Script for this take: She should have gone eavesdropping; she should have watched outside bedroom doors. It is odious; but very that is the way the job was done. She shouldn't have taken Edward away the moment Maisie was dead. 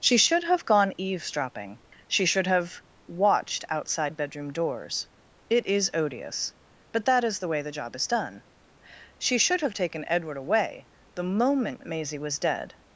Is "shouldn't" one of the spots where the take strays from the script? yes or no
yes